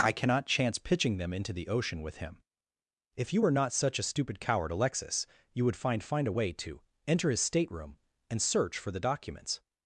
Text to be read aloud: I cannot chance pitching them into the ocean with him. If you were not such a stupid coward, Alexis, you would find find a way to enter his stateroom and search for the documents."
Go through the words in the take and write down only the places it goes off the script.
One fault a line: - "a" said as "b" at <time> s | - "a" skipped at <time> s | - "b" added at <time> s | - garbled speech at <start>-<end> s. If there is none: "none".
none